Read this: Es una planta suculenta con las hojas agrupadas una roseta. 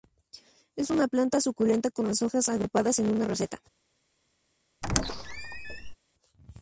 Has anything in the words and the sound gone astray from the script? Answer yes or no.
yes